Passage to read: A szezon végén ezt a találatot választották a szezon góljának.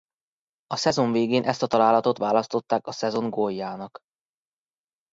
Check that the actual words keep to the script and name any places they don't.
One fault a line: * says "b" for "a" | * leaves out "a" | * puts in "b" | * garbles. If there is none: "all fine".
all fine